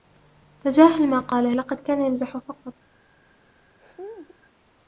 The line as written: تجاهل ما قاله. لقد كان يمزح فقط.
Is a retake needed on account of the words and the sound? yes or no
yes